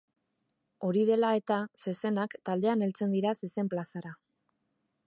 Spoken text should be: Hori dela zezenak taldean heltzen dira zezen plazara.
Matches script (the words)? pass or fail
fail